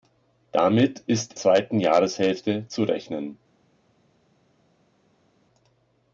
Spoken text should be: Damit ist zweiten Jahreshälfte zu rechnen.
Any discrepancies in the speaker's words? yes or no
no